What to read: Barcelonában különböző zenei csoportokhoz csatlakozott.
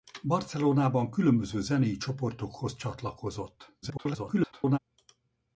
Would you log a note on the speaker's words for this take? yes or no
yes